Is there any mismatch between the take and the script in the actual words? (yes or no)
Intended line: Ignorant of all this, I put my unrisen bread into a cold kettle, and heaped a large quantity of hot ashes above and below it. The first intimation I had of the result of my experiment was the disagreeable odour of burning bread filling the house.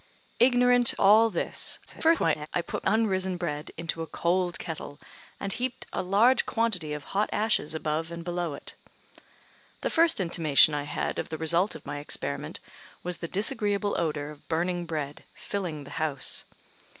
yes